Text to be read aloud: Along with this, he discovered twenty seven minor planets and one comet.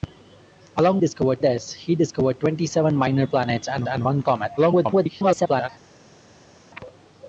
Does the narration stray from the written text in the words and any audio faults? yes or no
yes